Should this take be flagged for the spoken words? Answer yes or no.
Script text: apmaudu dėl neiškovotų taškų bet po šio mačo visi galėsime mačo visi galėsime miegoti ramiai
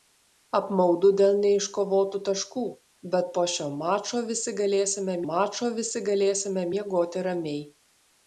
no